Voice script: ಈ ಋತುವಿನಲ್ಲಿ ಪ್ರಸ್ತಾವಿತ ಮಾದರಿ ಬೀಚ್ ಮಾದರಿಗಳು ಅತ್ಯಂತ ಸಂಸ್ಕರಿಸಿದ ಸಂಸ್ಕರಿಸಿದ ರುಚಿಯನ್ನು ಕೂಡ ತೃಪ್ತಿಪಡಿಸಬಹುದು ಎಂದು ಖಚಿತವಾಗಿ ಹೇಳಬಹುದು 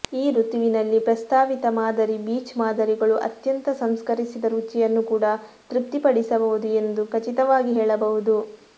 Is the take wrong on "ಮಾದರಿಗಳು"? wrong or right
right